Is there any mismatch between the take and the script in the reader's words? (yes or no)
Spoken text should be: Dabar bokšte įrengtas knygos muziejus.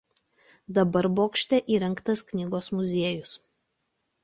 no